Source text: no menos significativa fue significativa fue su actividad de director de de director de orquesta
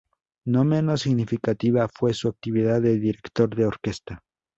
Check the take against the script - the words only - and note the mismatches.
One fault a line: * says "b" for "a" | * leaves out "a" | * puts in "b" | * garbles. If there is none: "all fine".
* leaves out "significativa fue"
* leaves out "de director de"